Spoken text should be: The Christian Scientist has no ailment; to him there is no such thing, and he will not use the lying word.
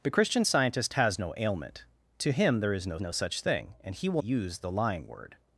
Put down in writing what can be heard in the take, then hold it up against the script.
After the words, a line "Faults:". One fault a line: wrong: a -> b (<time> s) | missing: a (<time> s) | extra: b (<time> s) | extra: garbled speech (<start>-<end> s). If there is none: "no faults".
The Christian Scientist has no ailment; to him there is no no such thing, and he will use the lying word.
Faults:
extra: no (3.0 s)
missing: not (4.2 s)